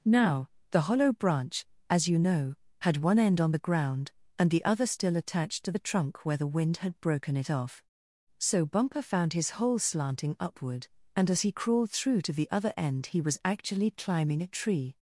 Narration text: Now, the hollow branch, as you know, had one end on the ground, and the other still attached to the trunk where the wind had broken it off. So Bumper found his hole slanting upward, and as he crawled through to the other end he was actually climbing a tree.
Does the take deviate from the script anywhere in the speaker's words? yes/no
no